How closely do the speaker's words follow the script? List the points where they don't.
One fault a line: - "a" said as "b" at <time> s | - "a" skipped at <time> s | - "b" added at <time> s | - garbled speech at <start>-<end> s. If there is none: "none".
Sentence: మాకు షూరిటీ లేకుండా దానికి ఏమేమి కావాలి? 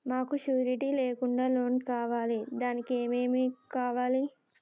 - "లోన్ కావాలి" added at 1.5 s